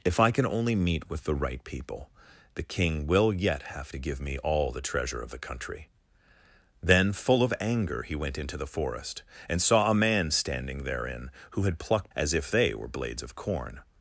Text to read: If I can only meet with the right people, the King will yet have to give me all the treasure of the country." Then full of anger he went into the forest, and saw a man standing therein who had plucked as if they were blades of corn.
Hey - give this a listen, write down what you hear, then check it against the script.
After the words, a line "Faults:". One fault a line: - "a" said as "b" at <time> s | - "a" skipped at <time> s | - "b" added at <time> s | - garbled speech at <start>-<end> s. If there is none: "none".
If I can only meet with the right people, the King will yet have to give me all the treasure of the country." Then full of anger he went into the forest, and saw a man standing therein who had plucked as if they were blades of corn.
Faults:
none